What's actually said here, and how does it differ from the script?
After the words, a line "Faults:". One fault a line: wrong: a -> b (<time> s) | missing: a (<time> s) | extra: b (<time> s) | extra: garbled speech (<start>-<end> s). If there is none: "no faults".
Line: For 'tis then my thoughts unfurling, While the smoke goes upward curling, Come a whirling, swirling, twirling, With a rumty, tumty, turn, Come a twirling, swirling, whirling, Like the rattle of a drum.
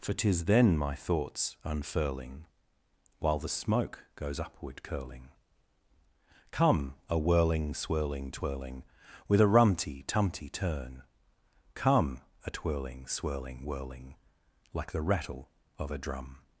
For 'tis then my thoughts unfurling, While the smoke goes upward curling, Come a whirling, swirling, twirling, With a rumty, tumty, turn, Come a twirling, swirling, whirling, Like the rattle of a drum.
Faults:
no faults